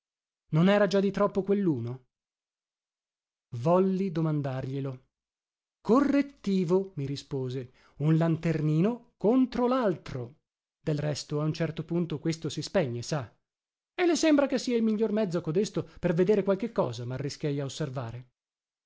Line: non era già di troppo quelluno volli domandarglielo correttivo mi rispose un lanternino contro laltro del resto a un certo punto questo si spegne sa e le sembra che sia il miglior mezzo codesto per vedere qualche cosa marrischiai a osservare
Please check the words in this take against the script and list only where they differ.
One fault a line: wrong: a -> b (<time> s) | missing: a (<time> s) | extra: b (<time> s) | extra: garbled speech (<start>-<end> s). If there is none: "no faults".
no faults